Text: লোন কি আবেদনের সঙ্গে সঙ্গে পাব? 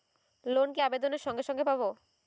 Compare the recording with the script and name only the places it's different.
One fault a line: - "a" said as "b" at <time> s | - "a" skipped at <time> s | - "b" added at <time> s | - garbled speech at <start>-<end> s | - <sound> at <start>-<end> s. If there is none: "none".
none